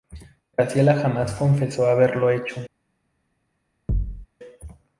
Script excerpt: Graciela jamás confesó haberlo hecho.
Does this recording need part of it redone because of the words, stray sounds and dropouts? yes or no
yes